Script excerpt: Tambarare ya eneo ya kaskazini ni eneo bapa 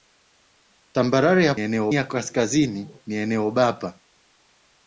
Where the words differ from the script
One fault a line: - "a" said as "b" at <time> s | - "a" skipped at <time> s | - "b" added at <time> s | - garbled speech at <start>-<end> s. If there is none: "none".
none